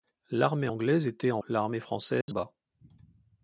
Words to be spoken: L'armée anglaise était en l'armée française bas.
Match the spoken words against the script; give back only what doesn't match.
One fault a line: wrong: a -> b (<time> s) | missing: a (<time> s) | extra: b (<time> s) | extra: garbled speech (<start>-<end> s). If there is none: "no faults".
no faults